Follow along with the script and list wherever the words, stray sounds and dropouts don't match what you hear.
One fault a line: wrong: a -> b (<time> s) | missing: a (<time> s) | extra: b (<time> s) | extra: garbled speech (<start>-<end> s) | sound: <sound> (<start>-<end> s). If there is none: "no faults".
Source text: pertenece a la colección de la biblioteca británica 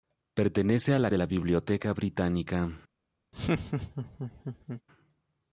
missing: colección (1.1 s)
sound: laugh (3.3-4.8 s)